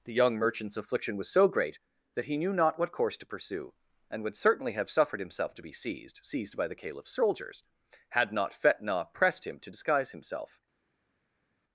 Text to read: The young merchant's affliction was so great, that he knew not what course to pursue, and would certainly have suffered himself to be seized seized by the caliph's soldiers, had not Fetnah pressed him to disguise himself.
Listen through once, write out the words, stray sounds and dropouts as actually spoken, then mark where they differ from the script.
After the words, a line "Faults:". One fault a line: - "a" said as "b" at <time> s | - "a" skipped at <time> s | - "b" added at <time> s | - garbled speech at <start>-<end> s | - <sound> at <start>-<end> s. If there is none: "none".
The young merchant's affliction was so great, that he knew not what course to pursue, and would certainly have suffered himself to be seized seized by the caliph's soldiers, had not Fetnah pressed him to disguise himself.
Faults:
none